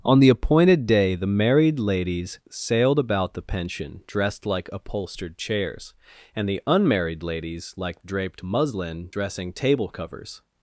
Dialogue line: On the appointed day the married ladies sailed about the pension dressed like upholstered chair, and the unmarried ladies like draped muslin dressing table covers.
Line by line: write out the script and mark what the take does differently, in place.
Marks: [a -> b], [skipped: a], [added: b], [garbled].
On the appointed day the married ladies sailed about the pension dressed like upholstered [chair, -> chairs] and the unmarried ladies like draped muslin dressing table covers.